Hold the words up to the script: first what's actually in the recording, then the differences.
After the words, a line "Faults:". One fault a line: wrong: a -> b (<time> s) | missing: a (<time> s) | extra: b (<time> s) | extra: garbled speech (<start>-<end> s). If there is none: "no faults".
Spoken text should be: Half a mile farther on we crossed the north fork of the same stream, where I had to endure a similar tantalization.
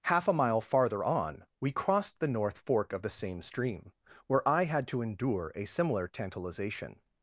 Half a mile farther on we crossed the north fork of the same stream, where I had to endure a similar tantalization.
Faults:
no faults